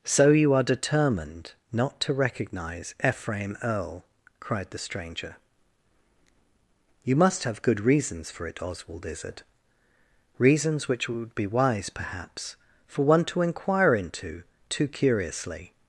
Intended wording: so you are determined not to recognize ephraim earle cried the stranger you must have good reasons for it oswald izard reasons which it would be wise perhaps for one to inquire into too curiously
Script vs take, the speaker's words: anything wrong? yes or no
no